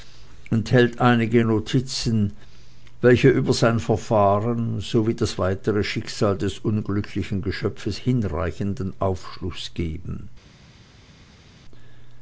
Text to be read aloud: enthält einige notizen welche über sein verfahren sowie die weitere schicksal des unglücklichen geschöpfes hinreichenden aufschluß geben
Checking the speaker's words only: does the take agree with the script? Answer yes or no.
no